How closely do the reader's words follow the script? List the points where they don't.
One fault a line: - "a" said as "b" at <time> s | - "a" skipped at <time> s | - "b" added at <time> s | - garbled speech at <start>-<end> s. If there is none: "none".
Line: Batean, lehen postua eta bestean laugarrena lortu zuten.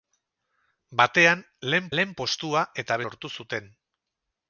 - "lehen" added at 2.0 s
- "bestean laugarrena" skipped at 3.0 s